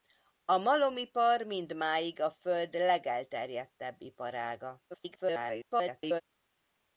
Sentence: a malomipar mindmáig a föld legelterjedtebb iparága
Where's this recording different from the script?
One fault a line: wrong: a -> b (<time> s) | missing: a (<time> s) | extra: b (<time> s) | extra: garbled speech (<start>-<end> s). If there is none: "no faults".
extra: garbled speech (4.9-6.2 s)